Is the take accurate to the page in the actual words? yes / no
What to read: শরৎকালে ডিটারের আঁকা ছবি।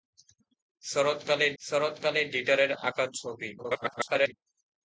no